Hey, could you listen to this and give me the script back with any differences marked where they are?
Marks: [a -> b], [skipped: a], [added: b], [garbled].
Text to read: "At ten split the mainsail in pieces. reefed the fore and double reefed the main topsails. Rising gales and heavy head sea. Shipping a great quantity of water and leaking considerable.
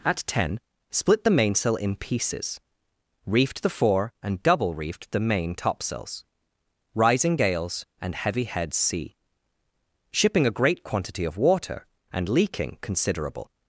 "At ten split the mainsail in pieces. reefed the fore and double reefed the main topsails. Rising gales and heavy head sea. Shipping a great quantity of water and leaking considerable.